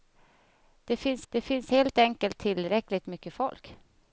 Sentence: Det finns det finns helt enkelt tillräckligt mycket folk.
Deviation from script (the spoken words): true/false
false